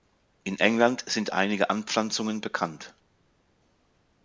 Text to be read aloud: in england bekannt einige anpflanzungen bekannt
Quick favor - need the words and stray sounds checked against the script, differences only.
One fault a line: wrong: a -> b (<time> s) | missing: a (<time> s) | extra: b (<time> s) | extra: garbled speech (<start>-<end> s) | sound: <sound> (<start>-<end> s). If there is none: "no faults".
wrong: bekannt -> sind (1.1 s)